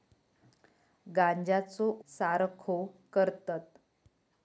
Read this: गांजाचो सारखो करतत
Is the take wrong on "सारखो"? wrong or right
right